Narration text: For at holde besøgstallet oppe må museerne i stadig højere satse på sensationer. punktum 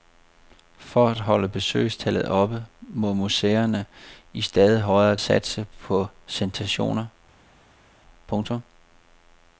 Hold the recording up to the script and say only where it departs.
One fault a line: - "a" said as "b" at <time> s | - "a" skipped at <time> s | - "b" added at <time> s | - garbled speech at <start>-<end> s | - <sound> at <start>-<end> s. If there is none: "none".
none